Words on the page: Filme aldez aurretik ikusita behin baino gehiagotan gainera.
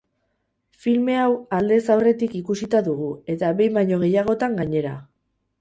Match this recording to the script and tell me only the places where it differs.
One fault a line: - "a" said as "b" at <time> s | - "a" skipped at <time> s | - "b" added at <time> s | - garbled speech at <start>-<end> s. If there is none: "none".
- "hau" added at 1.2 s
- "dugu eta" added at 2.9 s